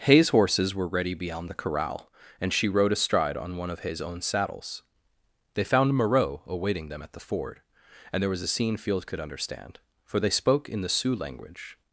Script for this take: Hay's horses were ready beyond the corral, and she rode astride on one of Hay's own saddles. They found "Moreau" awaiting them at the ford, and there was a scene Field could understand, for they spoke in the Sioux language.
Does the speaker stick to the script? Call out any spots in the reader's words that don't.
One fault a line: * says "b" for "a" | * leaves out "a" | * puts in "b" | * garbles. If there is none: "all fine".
all fine